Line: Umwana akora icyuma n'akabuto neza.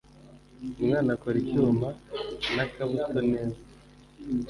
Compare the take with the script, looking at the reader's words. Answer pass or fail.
pass